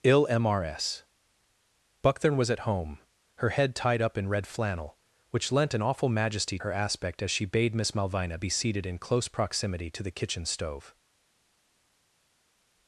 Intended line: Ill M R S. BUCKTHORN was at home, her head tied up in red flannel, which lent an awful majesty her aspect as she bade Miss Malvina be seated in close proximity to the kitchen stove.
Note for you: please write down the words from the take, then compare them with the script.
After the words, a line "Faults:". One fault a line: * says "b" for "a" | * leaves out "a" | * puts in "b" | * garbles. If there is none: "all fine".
Ill M R S. BUCKTHORN was at home, her head tied up in red flannel, which lent an awful majesty her aspect as she bade Miss Malvina be seated in close proximity to the kitchen stove.
Faults:
all fine